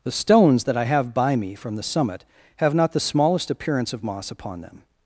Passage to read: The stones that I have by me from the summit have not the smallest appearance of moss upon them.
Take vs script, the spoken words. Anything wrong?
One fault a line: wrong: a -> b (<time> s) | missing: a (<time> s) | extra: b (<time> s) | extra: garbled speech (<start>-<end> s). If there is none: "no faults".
no faults